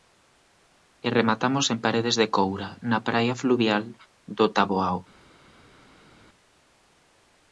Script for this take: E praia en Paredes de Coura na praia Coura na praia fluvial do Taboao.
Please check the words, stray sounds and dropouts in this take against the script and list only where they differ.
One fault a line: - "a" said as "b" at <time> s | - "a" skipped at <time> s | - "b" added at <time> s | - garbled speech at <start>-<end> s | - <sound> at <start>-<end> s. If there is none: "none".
- "praia" said as "rematamos" at 1.2 s
- "Coura na praia" skipped at 3.3 s